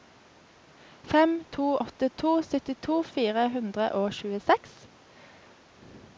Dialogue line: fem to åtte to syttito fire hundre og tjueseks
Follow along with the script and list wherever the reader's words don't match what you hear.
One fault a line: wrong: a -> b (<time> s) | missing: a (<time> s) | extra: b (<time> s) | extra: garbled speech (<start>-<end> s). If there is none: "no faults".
no faults